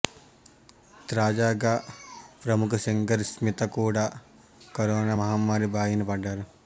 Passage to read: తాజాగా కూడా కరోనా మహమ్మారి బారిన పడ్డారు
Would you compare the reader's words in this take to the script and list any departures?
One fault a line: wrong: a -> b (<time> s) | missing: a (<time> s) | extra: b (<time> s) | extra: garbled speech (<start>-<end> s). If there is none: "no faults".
extra: ప్రముఖ సింగర్ స్మిత (2.5 s)